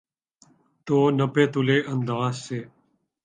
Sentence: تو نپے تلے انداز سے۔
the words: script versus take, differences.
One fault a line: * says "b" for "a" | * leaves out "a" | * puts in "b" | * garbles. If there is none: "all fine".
all fine